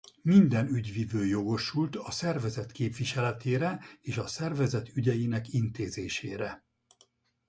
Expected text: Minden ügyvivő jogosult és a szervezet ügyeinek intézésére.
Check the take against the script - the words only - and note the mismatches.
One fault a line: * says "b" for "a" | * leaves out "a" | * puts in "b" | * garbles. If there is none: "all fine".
* puts in "a szervezet képviseletére"